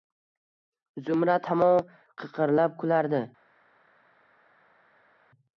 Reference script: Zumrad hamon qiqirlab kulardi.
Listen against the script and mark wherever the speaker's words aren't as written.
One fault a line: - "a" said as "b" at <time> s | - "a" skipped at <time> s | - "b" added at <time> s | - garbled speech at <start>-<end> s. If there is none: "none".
none